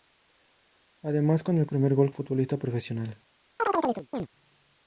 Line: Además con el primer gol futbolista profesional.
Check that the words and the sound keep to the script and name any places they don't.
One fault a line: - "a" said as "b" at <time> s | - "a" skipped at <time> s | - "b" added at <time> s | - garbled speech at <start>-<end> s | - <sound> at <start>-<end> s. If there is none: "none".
- chirp at 3.6-4.3 s